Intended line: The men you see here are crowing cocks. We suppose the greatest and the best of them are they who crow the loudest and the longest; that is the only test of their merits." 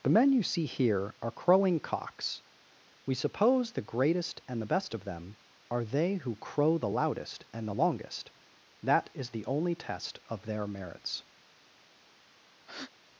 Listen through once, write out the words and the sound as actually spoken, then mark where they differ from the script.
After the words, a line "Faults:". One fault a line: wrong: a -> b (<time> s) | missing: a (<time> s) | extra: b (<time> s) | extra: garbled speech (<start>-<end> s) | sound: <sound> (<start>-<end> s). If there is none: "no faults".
The men you see here are crowing cocks. We suppose the greatest and the best of them are they who crow the loudest and the longest; that is the only test of their merits."
Faults:
sound: breath (12.6-12.9 s)